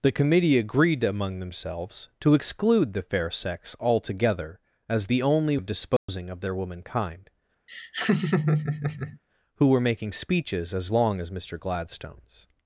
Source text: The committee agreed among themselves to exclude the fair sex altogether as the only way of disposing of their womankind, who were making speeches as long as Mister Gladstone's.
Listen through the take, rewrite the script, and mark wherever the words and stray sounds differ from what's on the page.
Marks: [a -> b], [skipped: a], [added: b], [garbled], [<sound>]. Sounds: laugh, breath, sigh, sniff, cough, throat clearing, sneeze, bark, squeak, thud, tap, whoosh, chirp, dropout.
The committee agreed among themselves to exclude the fair sex altogether as the only [skipped: way] of disposing [dropout] of their womankind, [laugh] who were making speeches as long as Mister Gladstone's.